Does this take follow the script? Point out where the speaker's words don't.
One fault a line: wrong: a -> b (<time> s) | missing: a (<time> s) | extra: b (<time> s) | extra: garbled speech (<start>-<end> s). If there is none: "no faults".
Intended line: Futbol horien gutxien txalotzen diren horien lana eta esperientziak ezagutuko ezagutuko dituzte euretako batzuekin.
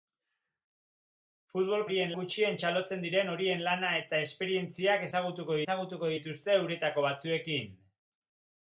no faults